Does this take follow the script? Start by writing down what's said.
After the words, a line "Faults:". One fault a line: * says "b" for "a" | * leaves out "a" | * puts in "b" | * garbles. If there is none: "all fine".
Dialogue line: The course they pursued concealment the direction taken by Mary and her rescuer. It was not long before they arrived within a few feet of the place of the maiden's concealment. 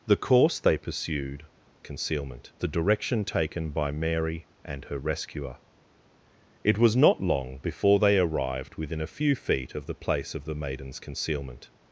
The course they pursued concealment the direction taken by Mary and her rescuer. It was not long before they arrived within a few feet of the place of the maiden's concealment.
Faults:
all fine